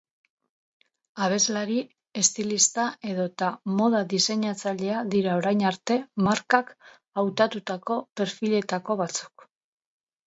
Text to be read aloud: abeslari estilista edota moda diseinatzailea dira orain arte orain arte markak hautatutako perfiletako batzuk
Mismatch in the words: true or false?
true